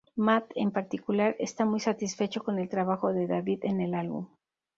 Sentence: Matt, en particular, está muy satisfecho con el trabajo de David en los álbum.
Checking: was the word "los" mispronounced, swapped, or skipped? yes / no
yes